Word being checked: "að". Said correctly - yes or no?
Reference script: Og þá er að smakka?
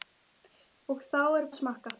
yes